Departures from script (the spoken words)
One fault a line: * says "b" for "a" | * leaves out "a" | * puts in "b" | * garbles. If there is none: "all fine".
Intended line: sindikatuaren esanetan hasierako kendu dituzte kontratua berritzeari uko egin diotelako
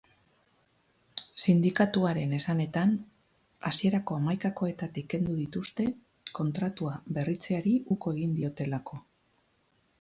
* puts in "hamaikakoetatik"